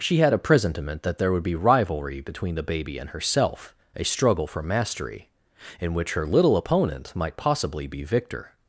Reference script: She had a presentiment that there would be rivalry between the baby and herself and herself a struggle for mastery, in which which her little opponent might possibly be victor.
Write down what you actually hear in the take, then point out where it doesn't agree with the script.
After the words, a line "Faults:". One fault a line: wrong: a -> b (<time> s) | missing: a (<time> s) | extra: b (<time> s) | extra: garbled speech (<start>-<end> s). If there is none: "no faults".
She had a presentiment that there would be rivalry between the baby and herself a struggle for mastery, in which her little opponent might possibly be victor.
Faults:
missing: and herself (3.8 s)
missing: which (6.1 s)